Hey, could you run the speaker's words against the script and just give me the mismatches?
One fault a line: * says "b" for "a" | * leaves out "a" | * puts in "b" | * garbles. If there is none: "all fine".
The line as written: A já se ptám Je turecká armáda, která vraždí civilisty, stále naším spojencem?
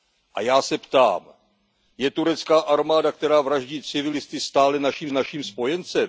* puts in "naším"